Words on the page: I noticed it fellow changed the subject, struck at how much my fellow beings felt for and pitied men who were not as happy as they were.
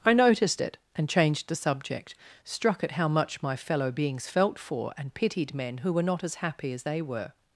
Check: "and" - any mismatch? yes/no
no